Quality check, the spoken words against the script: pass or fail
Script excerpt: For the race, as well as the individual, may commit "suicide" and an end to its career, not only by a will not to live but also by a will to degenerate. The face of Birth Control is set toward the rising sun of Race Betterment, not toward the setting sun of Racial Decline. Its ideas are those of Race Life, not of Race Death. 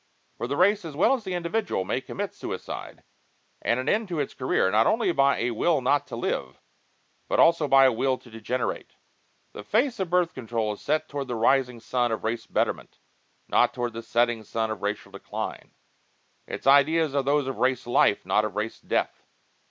pass